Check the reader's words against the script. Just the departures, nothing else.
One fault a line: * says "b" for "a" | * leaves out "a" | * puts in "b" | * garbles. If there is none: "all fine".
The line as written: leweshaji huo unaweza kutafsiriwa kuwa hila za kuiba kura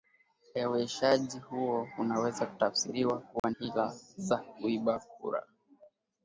all fine